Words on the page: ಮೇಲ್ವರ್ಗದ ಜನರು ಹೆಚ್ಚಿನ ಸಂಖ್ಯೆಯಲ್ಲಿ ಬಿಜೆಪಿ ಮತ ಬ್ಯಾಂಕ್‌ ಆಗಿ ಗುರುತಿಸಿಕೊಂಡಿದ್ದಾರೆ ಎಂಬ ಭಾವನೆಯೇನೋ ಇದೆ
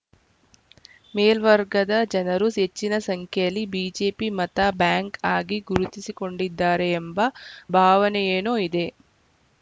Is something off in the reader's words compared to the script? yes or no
no